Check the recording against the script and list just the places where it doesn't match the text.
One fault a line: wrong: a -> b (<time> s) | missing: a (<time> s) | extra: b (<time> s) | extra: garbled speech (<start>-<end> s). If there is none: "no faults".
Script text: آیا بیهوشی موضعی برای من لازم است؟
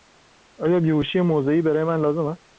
no faults